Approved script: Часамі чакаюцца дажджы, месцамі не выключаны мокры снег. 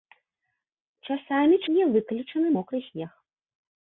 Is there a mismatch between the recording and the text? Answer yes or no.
yes